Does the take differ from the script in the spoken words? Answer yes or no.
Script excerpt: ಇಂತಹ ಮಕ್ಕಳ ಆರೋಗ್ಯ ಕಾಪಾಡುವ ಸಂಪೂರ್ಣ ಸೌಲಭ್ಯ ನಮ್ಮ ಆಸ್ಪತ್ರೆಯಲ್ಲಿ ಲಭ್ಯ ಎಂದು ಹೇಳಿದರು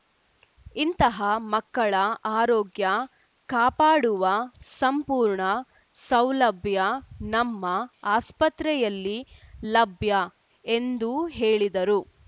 no